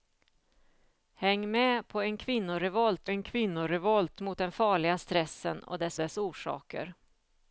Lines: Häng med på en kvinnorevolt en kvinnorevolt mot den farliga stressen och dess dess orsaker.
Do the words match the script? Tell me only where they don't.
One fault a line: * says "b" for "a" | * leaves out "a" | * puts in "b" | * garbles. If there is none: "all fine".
all fine